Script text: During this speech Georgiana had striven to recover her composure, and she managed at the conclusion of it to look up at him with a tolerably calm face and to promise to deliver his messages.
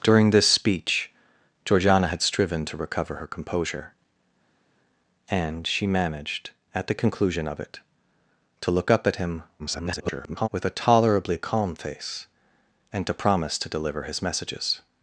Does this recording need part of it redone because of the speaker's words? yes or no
yes